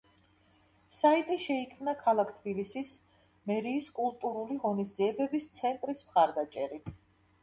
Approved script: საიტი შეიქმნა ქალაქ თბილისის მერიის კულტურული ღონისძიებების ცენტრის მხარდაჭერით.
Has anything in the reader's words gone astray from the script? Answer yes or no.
no